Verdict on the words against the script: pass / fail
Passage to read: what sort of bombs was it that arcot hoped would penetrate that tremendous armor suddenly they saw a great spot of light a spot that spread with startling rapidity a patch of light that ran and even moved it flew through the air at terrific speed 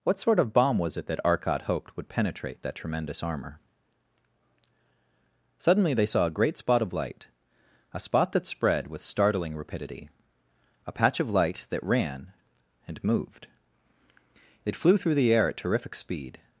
fail